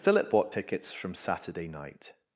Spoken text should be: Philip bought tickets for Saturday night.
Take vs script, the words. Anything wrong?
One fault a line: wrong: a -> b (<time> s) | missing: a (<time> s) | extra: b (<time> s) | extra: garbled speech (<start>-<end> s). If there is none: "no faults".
wrong: for -> from (0.9 s)